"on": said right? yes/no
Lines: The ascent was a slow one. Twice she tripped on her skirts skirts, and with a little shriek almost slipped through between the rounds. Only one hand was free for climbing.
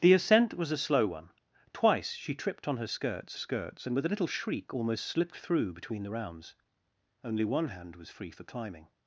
yes